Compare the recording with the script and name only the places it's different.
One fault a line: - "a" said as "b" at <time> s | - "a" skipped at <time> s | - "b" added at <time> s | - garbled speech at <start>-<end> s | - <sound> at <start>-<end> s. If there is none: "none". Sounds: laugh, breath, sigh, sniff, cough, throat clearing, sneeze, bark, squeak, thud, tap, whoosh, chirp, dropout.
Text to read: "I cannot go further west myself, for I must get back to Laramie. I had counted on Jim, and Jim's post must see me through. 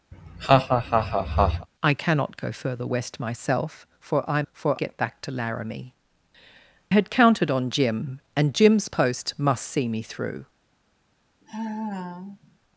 - laugh at 0.1-1.7 s
- "must" said as "for" at 4.5 s
- "I" skipped at 5.9 s
- sigh at 11.4-12.6 s